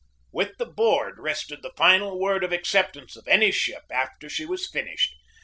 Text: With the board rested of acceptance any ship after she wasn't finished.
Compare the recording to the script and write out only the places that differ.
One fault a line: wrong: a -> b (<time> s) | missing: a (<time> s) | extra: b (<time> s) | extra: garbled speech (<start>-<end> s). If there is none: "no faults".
extra: the final word (1.6 s)
extra: of (3.1 s)
wrong: wasn't -> was (4.5 s)